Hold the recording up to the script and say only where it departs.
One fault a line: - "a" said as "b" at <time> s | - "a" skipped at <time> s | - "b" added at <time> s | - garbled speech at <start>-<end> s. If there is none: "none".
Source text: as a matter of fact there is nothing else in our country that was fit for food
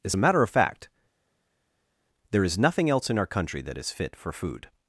- "was" said as "is" at 3.8 s